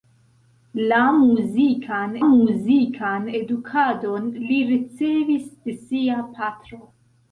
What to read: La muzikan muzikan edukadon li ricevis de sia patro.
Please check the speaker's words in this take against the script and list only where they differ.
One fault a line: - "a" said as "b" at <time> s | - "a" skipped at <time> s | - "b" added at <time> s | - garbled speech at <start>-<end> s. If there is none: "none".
none